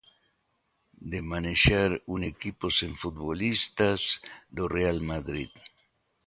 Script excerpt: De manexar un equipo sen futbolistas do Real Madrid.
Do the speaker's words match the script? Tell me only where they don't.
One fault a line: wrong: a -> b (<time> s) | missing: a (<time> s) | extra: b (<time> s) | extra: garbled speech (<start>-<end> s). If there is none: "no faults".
no faults